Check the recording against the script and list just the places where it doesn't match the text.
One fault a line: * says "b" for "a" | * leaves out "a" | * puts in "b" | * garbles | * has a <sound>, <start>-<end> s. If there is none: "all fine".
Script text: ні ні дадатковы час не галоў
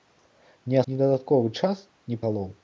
all fine